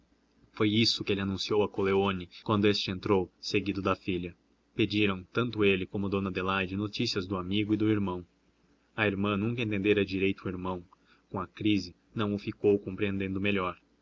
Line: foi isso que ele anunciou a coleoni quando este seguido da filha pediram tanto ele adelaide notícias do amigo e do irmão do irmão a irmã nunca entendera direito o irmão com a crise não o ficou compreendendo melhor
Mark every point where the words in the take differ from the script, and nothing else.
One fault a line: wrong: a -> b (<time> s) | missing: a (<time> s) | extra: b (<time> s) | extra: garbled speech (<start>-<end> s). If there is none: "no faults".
extra: entrou (2.9 s)
extra: como dona (5.8 s)
missing: do irmão (8.2 s)